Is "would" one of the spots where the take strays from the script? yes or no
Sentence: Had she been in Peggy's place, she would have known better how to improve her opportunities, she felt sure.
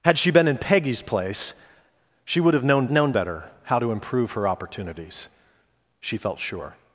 no